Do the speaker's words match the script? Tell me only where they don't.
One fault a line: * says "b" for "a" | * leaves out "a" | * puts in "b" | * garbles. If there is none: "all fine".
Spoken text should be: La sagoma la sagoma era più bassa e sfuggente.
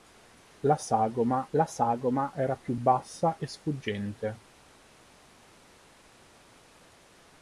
all fine